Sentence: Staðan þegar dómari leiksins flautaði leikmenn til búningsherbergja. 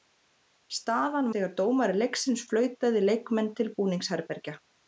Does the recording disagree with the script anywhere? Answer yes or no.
no